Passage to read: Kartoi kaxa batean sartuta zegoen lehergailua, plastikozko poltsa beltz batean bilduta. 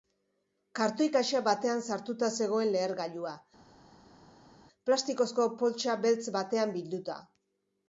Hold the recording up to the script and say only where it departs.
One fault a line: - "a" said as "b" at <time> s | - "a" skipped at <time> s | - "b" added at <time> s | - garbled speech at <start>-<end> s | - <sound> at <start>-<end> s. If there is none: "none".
none